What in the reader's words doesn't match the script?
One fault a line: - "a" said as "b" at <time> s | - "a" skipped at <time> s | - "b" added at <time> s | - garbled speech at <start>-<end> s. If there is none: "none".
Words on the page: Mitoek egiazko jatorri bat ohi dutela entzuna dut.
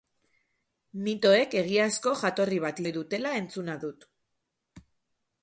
none